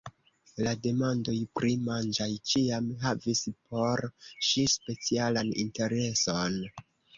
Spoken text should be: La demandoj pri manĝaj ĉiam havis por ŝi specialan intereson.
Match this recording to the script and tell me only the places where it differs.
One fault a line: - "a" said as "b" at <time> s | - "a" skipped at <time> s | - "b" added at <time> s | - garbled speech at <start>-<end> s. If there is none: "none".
none